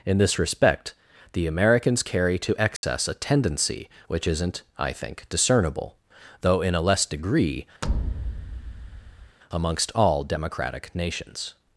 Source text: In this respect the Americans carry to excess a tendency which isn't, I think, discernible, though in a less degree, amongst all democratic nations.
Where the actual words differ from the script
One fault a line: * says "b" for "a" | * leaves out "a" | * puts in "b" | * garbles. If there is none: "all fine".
all fine